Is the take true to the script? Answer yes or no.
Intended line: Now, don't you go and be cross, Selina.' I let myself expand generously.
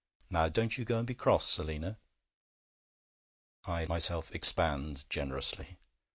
no